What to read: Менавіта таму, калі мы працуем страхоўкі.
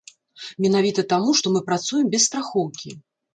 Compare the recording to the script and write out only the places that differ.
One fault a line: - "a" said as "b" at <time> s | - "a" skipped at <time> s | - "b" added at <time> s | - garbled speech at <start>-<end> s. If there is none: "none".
- "калі" said as "што" at 1.4 s
- "без" added at 2.1 s